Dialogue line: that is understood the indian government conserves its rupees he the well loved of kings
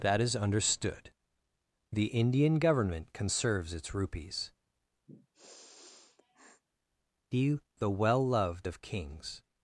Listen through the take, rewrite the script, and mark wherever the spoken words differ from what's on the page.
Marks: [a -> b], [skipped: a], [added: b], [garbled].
that is understood the indian government conserves its rupees he the well loved of kings